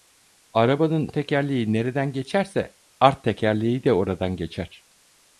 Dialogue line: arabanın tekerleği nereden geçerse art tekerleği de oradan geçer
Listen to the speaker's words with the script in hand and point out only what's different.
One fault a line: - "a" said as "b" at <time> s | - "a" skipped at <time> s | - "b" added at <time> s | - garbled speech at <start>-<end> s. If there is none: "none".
none